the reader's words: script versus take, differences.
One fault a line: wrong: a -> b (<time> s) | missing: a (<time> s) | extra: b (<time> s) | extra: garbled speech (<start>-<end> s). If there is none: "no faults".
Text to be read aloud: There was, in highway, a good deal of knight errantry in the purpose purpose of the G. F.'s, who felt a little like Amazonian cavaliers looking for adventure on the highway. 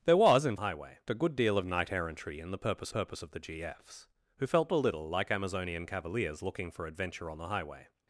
no faults